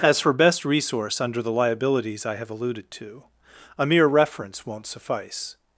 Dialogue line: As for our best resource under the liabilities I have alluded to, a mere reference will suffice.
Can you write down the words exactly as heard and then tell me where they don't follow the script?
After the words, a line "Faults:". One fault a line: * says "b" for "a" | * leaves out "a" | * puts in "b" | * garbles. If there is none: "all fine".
As for best resource under the liabilities I have alluded to, a mere reference won't suffice.
Faults:
* leaves out "our"
* says "won't" for "will"